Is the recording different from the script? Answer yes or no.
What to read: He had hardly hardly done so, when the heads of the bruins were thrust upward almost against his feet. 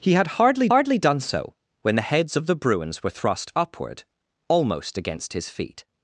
no